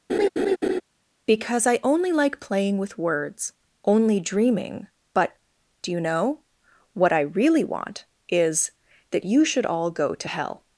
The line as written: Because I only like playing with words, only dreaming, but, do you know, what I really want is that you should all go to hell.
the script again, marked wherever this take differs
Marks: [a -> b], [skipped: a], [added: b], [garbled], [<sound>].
[laugh] Because I only like playing with words, only dreaming, but, do you know, what I really want is that you should all go to hell.